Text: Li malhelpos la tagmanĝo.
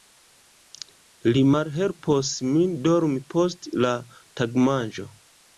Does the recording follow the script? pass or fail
fail